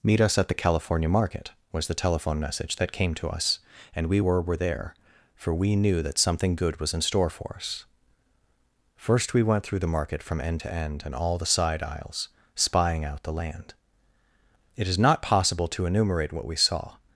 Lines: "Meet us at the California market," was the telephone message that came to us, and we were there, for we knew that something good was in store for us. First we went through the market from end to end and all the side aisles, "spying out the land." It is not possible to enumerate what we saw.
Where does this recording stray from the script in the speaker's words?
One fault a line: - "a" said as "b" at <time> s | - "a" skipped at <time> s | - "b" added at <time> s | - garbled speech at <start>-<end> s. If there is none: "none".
- "were" added at 4.4 s